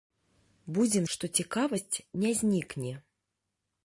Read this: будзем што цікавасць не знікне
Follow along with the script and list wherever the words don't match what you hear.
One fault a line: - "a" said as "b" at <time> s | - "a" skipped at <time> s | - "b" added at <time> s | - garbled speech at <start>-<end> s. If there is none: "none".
none